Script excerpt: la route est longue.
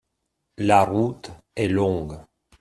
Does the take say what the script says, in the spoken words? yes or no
yes